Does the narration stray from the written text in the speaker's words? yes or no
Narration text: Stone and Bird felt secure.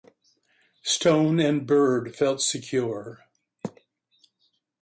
no